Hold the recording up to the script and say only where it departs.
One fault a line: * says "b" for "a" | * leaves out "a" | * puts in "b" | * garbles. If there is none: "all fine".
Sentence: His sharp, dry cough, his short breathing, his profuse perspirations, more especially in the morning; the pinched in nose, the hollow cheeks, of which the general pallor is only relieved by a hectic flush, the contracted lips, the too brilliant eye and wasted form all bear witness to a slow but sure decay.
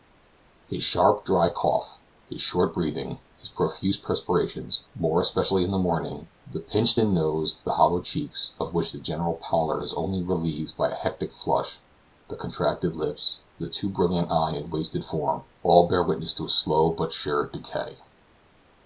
all fine